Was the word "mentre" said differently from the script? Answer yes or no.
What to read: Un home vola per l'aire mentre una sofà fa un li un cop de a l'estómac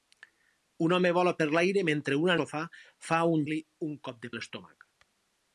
no